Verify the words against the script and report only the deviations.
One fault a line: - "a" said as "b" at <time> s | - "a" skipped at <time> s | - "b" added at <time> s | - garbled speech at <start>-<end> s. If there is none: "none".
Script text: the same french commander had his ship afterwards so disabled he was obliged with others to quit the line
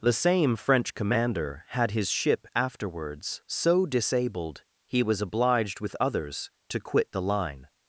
none